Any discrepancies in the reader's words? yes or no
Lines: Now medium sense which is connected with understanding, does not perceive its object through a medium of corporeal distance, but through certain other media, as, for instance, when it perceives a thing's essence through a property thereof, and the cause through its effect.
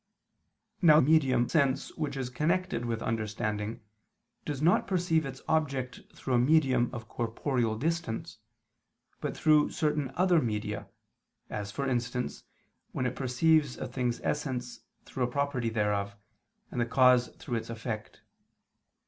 no